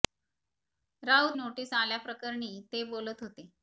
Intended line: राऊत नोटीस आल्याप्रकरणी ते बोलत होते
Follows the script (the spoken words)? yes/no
yes